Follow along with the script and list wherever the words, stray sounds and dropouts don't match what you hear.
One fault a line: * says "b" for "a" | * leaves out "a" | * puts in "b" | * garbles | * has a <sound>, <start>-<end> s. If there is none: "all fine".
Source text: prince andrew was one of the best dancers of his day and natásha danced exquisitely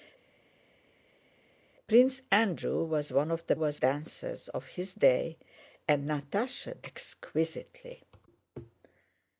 * says "was" for "best"
* leaves out "danced"